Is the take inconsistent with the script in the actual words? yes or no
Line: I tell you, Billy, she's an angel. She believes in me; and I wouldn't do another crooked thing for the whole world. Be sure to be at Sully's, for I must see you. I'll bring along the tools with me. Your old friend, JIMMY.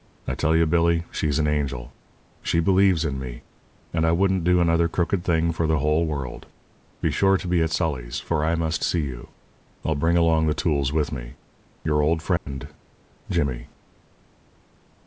no